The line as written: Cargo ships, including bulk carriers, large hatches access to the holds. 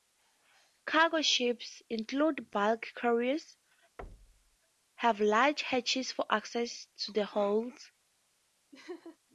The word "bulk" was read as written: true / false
true